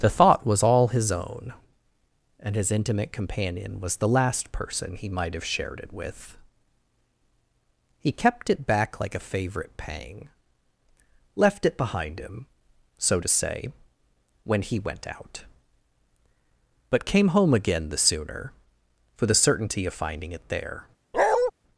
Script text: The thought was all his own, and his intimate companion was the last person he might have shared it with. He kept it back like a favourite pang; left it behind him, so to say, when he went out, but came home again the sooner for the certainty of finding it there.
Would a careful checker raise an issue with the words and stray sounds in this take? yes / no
yes